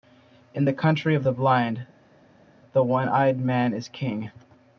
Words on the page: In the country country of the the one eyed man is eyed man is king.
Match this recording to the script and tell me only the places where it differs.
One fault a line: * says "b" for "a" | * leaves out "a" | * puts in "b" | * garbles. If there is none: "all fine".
* leaves out "country"
* puts in "blind"
* leaves out "eyed man is"